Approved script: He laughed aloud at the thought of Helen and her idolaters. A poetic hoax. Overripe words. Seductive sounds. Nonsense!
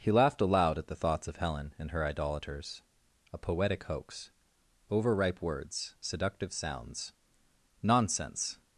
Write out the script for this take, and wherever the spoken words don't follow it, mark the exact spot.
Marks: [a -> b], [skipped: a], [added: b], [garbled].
He laughed aloud at the [thought -> thoughts] of Helen and her idolaters. A poetic hoax. Overripe words. Seductive sounds. Nonsense!